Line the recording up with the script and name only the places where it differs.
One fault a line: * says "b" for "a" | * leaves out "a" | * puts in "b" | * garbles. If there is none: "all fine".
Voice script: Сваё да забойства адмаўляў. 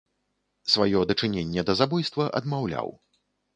* puts in "дачыненне"